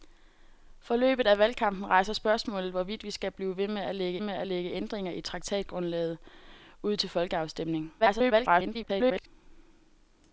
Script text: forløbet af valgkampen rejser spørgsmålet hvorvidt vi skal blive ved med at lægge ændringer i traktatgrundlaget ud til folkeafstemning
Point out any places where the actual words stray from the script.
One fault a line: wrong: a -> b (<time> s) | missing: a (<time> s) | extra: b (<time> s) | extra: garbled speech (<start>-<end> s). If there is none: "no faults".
extra: med at lægge (4.2 s)
extra: garbled speech (8.0-9.3 s)